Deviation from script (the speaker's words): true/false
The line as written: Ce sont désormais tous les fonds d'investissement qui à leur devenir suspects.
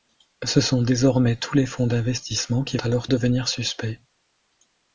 false